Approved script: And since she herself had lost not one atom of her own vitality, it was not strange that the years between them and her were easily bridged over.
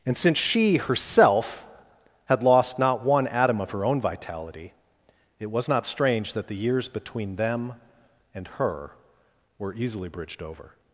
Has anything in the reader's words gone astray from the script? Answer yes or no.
no